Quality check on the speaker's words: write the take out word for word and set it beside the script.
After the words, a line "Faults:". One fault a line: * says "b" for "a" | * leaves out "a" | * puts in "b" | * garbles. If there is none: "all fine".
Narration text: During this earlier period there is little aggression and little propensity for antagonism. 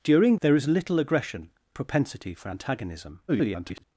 During there is little aggression propensity for antagonism. [garbled]
Faults:
* leaves out "this earlier period"
* leaves out "and little"
* garbles